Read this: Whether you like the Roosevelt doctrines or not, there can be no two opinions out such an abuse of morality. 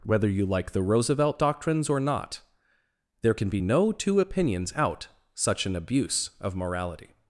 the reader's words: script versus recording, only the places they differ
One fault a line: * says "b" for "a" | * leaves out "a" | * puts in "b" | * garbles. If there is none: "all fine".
all fine